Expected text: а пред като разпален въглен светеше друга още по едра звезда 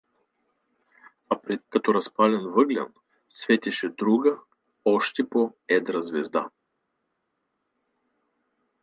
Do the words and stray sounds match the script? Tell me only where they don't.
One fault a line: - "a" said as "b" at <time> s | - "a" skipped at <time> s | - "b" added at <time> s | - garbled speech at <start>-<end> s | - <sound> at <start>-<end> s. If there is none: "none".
none